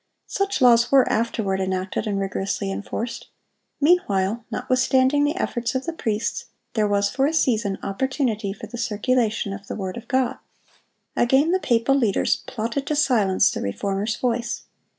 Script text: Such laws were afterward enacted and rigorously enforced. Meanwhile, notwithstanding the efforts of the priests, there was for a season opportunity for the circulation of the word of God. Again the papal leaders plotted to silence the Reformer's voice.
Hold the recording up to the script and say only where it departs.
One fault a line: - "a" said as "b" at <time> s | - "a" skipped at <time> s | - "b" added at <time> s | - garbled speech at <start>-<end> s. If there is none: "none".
none